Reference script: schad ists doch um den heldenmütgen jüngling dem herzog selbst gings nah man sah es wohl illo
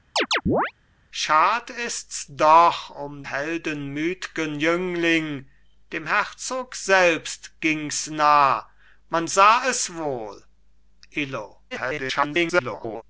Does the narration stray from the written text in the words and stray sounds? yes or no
yes